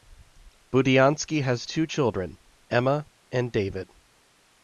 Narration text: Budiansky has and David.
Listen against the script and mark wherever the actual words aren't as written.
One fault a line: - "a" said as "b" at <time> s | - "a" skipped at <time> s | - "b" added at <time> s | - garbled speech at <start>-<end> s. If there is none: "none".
- "two children Emma" added at 1.6 s